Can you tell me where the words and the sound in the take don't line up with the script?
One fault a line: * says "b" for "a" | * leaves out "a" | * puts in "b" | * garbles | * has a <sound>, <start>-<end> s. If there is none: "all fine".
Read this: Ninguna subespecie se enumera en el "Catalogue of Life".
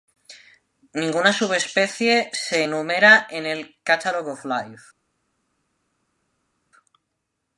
all fine